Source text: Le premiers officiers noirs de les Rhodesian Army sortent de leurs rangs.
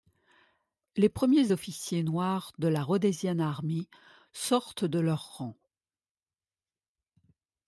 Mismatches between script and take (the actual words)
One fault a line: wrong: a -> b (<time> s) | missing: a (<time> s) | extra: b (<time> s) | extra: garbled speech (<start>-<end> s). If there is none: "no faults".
wrong: Le -> Les (0.9 s)
wrong: les -> la (2.7 s)